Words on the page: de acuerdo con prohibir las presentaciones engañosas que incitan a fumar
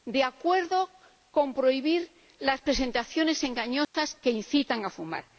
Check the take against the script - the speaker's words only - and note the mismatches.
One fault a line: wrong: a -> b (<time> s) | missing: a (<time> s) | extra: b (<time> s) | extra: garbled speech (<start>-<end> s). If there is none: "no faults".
no faults